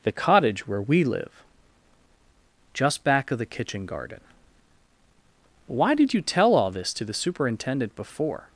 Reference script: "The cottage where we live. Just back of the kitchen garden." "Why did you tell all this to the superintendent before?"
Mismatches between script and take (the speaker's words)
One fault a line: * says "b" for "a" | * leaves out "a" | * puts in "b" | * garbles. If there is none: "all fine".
all fine